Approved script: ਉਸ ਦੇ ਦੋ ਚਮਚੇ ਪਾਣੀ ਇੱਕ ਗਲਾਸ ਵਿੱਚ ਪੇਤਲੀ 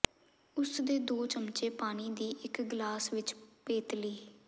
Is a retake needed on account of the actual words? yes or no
yes